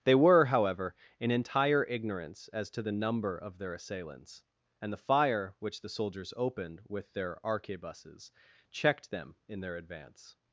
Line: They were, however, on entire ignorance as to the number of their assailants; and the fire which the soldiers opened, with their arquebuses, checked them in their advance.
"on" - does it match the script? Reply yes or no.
no